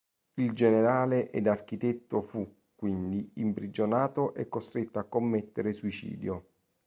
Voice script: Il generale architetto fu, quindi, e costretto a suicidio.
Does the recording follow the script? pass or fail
fail